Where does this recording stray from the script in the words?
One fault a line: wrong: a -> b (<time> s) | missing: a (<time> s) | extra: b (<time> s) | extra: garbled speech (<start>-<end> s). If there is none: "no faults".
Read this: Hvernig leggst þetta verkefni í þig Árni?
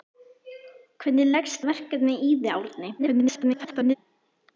missing: þetta (1.6 s)
extra: garbled speech (3.0-3.9 s)